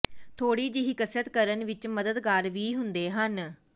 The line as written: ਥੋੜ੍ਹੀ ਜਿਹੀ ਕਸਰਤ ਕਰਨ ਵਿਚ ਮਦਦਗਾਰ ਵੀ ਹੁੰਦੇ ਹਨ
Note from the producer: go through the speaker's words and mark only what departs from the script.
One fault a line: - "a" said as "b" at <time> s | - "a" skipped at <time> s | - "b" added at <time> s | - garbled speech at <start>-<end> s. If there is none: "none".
none